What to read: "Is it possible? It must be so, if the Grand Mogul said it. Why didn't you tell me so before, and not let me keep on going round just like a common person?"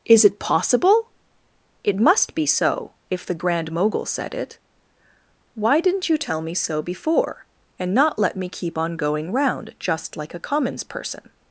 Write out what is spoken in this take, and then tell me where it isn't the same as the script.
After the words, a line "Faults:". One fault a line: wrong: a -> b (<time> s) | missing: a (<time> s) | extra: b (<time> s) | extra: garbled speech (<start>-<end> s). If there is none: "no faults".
"Is it possible? It must be so, if the Grand Mogul said it. Why didn't you tell me so before, and not let me keep on going round just like a commons person?"
Faults:
wrong: common -> commons (10.4 s)